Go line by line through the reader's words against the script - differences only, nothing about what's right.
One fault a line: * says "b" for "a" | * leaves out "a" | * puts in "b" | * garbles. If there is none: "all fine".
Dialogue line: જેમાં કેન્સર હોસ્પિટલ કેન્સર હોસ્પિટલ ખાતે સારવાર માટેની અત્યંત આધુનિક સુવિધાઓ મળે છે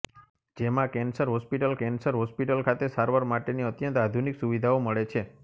all fine